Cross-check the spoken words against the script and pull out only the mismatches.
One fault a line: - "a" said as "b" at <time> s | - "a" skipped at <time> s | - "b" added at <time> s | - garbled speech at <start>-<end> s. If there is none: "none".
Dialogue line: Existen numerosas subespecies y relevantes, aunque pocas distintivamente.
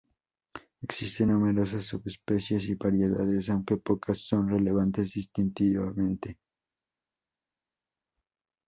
- "relevantes" said as "variedades" at 2.7 s
- "son relevantes" added at 4.2 s